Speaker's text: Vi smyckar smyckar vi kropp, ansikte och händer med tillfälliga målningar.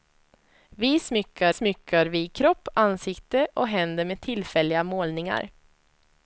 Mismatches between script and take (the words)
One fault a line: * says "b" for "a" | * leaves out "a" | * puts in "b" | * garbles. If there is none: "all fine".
all fine